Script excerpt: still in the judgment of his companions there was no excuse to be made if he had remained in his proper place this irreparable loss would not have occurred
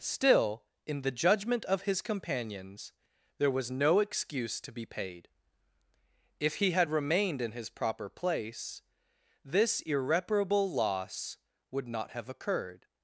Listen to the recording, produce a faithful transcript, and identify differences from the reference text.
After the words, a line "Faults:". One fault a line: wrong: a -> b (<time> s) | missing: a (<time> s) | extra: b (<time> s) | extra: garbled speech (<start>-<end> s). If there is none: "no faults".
still in the judgment of his companions there was no excuse to be paid if he had remained in his proper place this irreparable loss would not have occurred
Faults:
wrong: made -> paid (4.8 s)